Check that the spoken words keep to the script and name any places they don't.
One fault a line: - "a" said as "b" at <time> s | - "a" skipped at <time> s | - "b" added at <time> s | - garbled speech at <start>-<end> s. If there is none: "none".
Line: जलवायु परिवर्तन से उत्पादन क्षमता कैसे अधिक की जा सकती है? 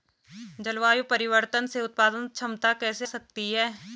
- "अधिक की जा" skipped at 3.1 s